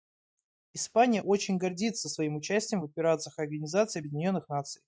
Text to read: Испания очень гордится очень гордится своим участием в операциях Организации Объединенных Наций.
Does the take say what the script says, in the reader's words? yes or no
no